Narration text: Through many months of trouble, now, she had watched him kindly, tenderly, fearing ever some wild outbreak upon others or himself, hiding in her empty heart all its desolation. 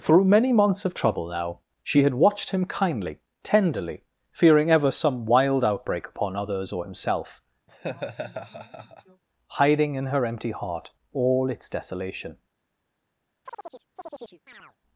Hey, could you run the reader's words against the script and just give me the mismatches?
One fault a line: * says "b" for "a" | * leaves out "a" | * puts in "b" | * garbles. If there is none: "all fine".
all fine